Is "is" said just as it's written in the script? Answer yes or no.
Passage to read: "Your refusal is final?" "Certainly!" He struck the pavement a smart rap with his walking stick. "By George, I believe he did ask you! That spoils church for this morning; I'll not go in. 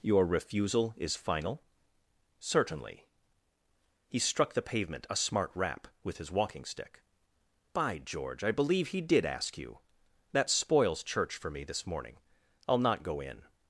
yes